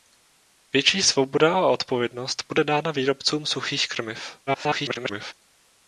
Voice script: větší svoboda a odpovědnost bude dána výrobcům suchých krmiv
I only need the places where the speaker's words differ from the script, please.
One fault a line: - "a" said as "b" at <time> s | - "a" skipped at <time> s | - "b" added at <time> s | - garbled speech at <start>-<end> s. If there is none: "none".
- garbled speech at 4.5-5.3 s